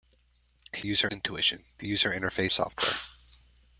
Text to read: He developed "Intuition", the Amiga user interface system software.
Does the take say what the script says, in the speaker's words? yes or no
no